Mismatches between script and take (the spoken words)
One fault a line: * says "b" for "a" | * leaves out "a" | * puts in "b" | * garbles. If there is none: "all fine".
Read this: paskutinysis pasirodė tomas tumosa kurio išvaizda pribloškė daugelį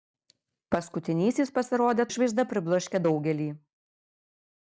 * leaves out "tomas tumosa kurio"